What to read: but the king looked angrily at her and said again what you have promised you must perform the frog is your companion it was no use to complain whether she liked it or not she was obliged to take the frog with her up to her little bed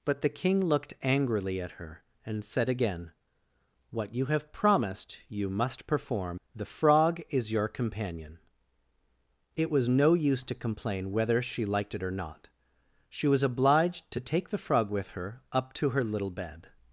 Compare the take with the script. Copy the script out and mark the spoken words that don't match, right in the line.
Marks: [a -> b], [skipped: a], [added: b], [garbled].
but the king looked angrily at her and said again what you have promised you must perform the frog is your companion it was no use to complain whether she liked it or not she was obliged to take the frog with her up to her little bed